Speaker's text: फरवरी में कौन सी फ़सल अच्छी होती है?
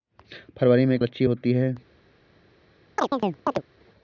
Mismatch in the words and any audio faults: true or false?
true